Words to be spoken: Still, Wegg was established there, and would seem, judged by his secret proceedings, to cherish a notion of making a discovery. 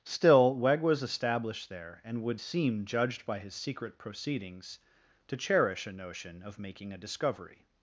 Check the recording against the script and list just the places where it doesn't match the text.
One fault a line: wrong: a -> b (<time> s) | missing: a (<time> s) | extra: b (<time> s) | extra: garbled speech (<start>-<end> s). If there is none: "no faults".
no faults